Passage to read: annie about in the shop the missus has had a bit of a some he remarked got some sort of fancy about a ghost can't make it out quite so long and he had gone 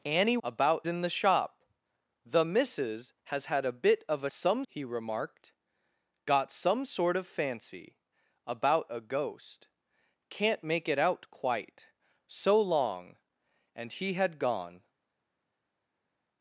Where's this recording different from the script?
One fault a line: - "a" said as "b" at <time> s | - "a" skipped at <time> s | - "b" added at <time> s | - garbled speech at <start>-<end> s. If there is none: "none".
none